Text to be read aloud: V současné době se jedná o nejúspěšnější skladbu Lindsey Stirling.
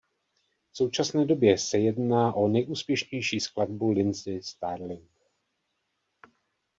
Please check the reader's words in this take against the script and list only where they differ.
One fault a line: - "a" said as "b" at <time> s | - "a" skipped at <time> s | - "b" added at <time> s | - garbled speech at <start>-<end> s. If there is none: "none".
none